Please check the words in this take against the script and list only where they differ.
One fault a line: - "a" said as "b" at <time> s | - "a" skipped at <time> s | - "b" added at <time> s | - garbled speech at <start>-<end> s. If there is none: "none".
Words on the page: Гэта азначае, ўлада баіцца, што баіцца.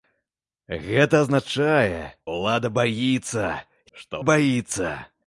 none